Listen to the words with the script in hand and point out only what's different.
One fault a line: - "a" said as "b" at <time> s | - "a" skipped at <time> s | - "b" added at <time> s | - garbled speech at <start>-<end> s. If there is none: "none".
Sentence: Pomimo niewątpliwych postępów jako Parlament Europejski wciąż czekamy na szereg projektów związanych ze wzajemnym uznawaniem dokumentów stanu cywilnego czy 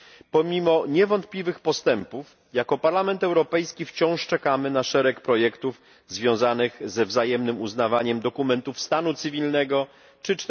none